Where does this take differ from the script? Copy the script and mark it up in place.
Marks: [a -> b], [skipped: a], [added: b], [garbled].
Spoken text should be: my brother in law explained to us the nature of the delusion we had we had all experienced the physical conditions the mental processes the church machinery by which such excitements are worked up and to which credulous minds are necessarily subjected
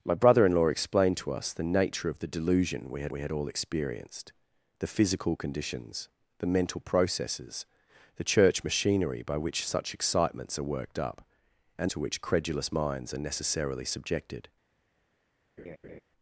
my brother in law explained to us the nature of the delusion we had we had all experienced the physical conditions the mental processes the church machinery by which such excitements are worked up and to which credulous minds are necessarily subjected